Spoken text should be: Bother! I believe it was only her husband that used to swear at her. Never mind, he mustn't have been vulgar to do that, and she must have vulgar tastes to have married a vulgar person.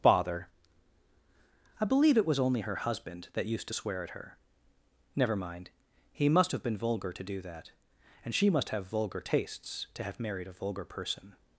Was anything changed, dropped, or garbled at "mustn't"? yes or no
yes